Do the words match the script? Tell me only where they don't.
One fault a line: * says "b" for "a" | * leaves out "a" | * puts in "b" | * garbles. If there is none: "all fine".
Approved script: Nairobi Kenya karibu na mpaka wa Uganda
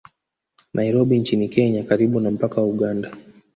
* puts in "nchini"